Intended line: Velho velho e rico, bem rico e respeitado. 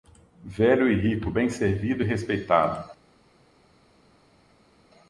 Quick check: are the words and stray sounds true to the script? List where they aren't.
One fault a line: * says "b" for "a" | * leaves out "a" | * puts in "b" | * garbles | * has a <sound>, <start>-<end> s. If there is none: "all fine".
* leaves out "velho"
* says "servido" for "rico"